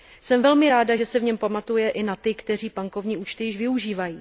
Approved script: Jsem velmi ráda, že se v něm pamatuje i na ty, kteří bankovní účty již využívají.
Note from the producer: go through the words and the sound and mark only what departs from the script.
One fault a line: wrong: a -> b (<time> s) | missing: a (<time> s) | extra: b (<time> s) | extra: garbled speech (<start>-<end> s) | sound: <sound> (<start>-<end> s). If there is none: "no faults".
no faults